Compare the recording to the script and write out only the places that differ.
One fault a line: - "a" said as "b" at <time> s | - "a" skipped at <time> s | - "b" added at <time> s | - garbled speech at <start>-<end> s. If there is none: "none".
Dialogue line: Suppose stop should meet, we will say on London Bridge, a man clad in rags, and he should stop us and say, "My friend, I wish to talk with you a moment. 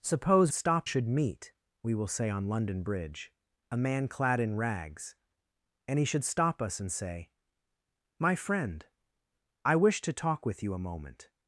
none